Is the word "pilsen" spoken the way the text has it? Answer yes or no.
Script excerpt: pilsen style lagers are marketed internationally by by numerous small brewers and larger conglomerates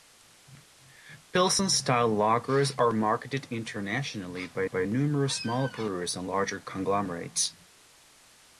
yes